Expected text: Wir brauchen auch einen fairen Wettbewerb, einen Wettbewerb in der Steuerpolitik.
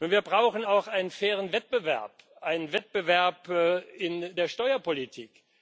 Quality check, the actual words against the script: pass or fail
pass